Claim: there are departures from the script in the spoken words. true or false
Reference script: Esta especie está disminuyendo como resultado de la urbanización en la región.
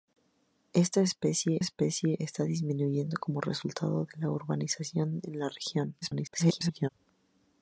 true